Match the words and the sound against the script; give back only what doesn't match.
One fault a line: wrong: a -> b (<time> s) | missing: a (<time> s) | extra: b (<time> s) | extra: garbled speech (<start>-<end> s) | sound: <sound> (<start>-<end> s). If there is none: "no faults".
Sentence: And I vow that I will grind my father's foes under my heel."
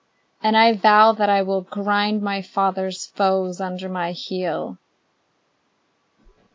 no faults